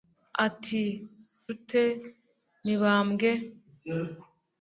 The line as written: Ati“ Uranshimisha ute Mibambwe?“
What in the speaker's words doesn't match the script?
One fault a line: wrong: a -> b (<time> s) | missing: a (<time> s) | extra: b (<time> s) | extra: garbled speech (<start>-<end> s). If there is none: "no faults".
missing: Uranshimisha (0.8 s)